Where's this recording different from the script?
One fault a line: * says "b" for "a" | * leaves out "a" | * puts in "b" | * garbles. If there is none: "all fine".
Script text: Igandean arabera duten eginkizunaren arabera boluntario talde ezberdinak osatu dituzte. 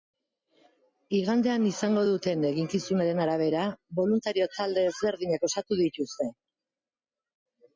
* says "izango" for "arabera"